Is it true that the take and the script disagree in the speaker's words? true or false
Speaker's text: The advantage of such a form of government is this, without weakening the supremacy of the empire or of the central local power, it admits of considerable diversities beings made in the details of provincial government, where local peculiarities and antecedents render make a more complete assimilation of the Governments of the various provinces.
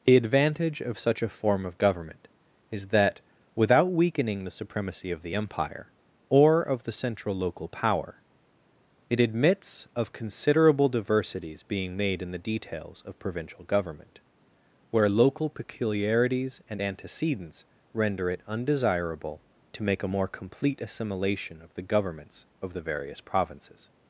true